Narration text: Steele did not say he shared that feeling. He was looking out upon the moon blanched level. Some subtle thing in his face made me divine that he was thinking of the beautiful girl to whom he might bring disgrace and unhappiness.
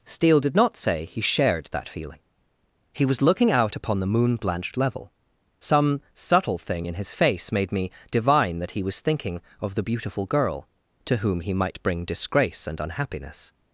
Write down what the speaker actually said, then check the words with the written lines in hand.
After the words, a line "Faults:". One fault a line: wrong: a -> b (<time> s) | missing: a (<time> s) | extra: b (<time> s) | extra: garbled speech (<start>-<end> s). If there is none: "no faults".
Steele did not say he shared that feeling. He was looking out upon the moon blanched level. Some subtle thing in his face made me divine that he was thinking of the beautiful girl to whom he might bring disgrace and unhappiness.
Faults:
no faults